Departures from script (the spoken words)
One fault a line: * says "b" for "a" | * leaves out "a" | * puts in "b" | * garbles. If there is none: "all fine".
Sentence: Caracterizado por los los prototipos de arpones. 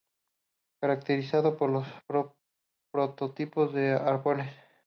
* leaves out "los"